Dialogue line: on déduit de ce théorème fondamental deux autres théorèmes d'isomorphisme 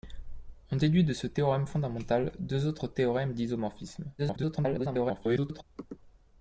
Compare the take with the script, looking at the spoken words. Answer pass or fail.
fail